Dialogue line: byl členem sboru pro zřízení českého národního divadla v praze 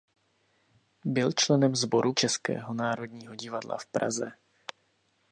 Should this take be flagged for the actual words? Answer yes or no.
yes